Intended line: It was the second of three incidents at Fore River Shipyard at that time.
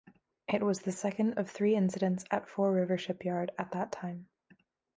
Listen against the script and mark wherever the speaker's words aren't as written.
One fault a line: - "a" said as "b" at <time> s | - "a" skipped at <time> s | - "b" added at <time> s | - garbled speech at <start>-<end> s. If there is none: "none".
none